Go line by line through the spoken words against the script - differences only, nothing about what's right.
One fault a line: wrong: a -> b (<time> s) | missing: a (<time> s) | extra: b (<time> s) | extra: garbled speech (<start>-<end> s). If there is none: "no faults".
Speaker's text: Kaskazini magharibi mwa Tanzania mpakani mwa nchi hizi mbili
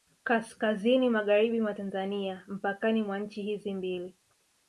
no faults